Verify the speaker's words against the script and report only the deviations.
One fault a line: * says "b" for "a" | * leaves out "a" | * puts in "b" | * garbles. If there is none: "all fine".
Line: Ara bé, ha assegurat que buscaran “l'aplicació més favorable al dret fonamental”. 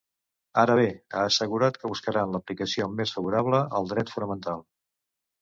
all fine